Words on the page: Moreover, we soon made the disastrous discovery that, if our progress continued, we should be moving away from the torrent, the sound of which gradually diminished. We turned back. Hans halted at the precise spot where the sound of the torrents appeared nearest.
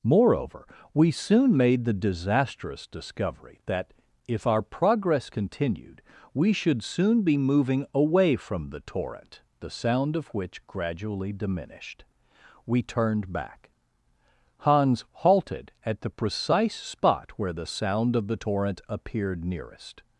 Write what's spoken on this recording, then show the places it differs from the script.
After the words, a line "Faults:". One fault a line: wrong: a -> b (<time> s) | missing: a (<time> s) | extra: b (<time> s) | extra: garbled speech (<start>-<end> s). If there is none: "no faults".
Moreover, we soon made the disastrous discovery that, if our progress continued, we should soon be moving away from the torrent, the sound of which gradually diminished. We turned back. Hans halted at the precise spot where the sound of the torrent appeared nearest.
Faults:
extra: soon (6.8 s)
wrong: torrents -> torrent (18.3 s)